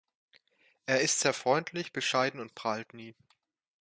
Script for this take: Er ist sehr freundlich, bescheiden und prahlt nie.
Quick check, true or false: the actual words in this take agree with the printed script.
true